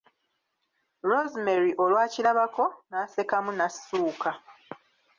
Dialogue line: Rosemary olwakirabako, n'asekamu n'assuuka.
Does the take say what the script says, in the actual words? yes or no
yes